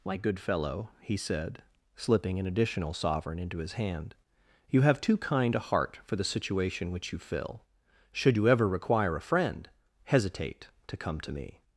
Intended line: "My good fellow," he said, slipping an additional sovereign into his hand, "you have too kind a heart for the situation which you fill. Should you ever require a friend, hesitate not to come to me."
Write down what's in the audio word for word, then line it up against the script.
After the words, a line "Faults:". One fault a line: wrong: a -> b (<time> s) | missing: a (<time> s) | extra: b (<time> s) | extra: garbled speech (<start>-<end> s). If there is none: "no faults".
"My good fellow," he said, slipping an additional sovereign into his hand, "you have too kind a heart for the situation which you fill. Should you ever require a friend, hesitate to come to me."
Faults:
missing: not (10.7 s)